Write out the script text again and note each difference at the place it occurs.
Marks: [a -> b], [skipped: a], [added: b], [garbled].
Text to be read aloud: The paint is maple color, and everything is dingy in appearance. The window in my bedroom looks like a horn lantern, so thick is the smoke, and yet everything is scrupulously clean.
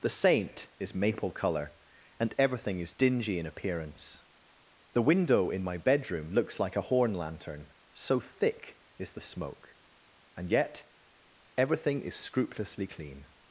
The [paint -> saint] is maple color, and everything is dingy in appearance. The window in my bedroom looks like a horn lantern, so thick is the smoke, and yet everything is scrupulously clean.